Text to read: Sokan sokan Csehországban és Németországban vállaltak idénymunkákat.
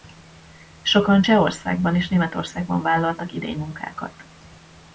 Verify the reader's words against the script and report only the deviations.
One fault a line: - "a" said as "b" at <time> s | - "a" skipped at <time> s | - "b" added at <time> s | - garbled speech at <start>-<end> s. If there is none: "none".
- "sokan" skipped at 1.2 s